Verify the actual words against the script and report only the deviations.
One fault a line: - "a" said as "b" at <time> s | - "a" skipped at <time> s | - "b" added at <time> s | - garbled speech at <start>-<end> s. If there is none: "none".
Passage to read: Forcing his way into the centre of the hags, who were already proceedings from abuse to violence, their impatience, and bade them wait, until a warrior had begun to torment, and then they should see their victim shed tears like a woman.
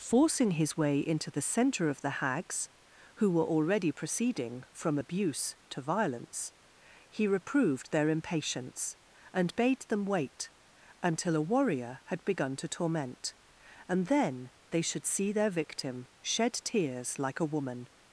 - "proceedings" said as "proceeding" at 3.9 s
- "he reproved" added at 7.1 s